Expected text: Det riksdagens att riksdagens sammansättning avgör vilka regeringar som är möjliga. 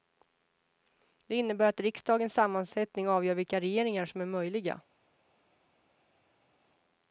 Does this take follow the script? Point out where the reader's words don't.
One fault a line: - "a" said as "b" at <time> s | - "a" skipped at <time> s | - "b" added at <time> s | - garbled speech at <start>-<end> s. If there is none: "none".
- "riksdagens" said as "innebär" at 1.4 s